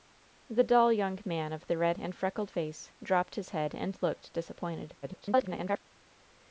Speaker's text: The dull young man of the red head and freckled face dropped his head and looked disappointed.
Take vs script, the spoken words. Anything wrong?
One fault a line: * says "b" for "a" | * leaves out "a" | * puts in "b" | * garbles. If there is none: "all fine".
* leaves out "head"
* garbles